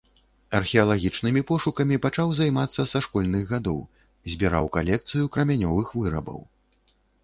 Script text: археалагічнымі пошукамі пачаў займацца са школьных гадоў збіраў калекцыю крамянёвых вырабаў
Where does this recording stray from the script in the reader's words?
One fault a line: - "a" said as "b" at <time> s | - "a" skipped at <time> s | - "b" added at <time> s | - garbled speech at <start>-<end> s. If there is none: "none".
none